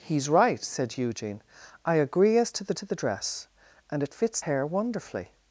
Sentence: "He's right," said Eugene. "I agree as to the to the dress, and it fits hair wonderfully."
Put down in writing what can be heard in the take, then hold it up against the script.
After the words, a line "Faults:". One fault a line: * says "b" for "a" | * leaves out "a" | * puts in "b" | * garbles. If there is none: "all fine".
"He's right," said Eugene. "I agree as to the to the dress, and it fits hair wonderfully."
Faults:
all fine